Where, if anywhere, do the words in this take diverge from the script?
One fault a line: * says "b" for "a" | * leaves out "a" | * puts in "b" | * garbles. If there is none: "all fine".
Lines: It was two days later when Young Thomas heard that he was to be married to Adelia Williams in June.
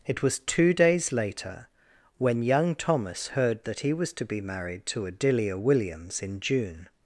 all fine